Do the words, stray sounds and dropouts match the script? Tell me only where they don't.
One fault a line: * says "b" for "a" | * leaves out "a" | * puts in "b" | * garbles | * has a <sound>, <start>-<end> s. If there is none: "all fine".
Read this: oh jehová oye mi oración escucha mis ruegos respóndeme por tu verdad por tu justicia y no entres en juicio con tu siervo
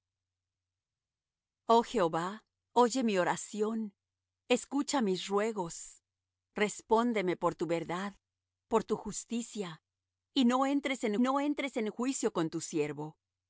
* puts in "no entres en"